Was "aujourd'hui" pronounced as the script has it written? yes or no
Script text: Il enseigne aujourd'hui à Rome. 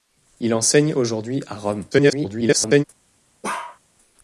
yes